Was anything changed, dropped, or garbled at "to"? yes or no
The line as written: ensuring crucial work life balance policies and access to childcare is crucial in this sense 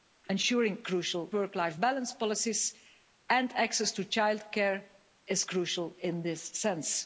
no